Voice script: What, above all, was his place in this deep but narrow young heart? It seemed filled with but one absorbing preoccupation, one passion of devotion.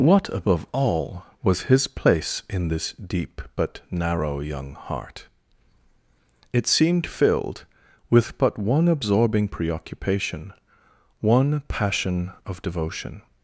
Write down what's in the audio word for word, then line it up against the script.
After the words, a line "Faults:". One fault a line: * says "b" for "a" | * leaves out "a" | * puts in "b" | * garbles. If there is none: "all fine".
What, above all, was his place in this deep but narrow young heart? It seemed filled with but one absorbing preoccupation, one passion of devotion.
Faults:
all fine